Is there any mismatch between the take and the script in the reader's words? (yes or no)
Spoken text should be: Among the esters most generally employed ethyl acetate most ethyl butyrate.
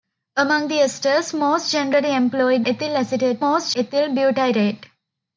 no